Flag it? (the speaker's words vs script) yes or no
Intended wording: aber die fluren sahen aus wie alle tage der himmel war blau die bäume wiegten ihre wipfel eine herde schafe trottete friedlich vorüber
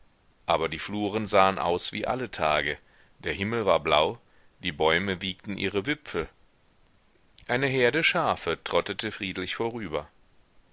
no